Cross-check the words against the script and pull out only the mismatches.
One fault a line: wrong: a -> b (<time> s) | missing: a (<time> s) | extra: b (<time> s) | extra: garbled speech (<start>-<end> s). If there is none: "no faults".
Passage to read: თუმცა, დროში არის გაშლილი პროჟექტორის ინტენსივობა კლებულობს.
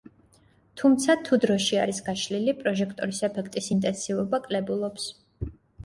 extra: თუ (1.3 s)
extra: ეფექტის (3.3 s)